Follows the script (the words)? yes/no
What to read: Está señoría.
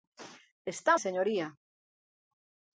yes